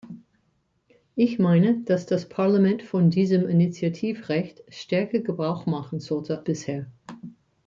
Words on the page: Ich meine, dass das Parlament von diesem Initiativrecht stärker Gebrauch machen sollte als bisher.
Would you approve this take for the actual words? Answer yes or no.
no